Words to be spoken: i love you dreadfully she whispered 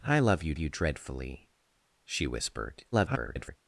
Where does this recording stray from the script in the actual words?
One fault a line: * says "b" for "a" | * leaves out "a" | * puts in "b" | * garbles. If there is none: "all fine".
* puts in "you"
* garbles